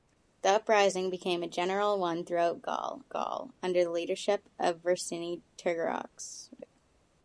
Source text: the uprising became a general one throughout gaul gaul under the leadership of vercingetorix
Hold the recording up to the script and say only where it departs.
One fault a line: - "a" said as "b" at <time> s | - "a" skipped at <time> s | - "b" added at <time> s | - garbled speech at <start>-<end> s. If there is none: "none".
none